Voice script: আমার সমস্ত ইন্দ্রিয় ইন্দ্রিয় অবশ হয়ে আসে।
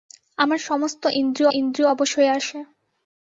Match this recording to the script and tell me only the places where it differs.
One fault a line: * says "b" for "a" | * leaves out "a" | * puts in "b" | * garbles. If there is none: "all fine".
all fine